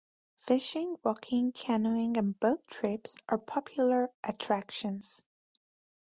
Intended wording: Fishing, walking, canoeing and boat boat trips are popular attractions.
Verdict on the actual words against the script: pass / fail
fail